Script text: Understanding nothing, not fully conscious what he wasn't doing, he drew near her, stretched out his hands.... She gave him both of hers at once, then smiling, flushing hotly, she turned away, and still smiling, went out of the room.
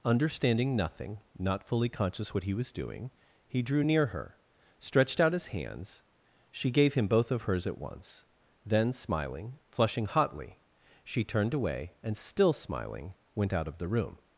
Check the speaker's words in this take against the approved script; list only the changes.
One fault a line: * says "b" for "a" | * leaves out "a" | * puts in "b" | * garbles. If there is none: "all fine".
* says "was" for "wasn't"